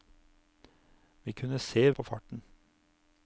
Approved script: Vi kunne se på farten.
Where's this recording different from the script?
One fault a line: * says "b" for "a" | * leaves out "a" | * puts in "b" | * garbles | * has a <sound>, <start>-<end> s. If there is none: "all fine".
all fine